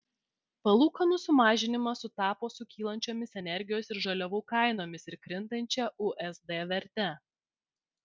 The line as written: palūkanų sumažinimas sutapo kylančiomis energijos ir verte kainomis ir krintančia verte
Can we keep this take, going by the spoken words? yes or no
no